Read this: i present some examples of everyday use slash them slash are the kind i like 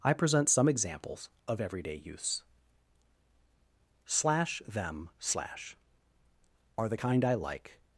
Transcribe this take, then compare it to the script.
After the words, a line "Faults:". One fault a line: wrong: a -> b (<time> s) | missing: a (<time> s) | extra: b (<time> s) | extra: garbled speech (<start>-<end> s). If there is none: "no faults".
i present some examples of everyday use slash them slash are the kind i like
Faults:
no faults